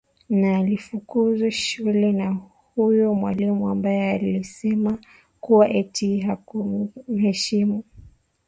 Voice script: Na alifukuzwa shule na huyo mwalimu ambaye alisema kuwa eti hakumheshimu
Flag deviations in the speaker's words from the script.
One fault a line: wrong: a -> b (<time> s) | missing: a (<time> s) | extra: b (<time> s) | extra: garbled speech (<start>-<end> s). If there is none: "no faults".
no faults